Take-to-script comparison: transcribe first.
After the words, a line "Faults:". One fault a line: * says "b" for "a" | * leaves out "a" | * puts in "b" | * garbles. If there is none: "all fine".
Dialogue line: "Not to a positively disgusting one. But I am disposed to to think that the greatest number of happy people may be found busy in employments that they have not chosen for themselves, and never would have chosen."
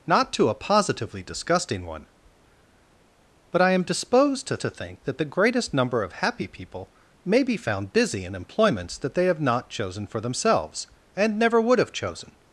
"Not to a positively disgusting one. But I am disposed to to think that the greatest number of happy people may be found busy in employments that they have not chosen for themselves, and never would have chosen."
Faults:
all fine